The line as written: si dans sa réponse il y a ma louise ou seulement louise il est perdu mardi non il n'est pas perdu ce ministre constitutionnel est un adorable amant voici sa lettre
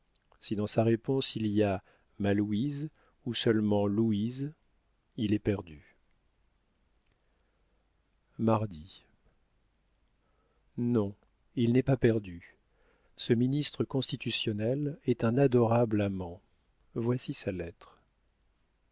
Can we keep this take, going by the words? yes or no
yes